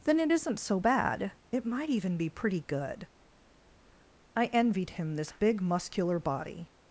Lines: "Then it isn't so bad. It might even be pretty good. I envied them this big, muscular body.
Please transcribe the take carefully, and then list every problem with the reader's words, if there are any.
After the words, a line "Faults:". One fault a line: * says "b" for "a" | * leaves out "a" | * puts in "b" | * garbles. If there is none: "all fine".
"Then it isn't so bad. It might even be pretty good. I envied him this big, muscular body.
Faults:
* says "him" for "them"